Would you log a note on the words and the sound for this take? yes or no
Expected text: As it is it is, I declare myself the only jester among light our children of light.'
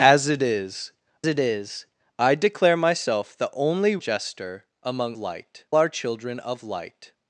no